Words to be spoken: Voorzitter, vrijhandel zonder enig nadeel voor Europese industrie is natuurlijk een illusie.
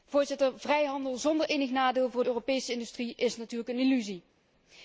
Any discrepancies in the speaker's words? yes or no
no